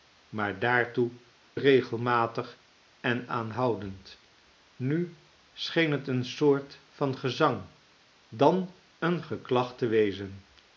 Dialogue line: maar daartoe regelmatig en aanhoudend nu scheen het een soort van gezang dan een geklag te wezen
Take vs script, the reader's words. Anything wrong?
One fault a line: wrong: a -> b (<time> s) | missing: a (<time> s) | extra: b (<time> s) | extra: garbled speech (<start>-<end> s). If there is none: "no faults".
no faults